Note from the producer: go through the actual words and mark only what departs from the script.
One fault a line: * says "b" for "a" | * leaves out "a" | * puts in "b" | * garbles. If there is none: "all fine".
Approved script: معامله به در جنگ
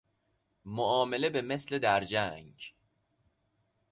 * puts in "مثل"